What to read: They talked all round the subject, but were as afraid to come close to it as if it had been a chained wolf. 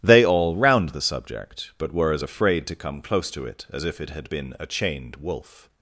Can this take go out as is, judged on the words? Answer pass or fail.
fail